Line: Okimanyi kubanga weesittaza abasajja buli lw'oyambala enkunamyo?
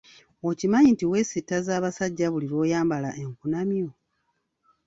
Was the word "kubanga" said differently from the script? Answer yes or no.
yes